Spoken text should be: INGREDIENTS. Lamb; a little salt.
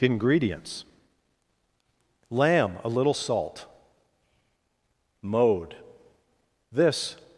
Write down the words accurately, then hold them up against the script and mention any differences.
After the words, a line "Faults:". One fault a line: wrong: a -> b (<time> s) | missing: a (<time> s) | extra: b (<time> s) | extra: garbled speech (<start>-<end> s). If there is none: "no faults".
INGREDIENTS. Lamb; a little salt. Mode. This
Faults:
extra: Mode This (5.2 s)